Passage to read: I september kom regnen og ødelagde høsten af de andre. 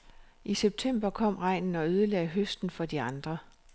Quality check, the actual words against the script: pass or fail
fail